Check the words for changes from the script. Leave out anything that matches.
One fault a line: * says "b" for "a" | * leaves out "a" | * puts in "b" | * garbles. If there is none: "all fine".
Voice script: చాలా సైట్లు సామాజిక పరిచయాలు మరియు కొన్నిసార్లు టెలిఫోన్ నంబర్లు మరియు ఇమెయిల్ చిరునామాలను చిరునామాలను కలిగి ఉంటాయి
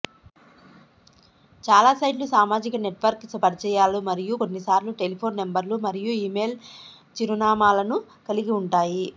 * puts in "నెట్వర్క్"
* leaves out "చిరునామాలను"